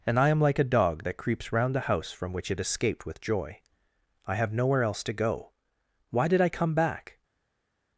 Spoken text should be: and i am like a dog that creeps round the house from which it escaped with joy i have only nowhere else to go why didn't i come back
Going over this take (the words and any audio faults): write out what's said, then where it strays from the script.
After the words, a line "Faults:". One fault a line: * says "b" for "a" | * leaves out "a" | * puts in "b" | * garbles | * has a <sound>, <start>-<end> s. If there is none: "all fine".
and i am like a dog that creeps round the house from which it escaped with joy i have nowhere else to go why did i come back
Faults:
* leaves out "only"
* says "did" for "didn't"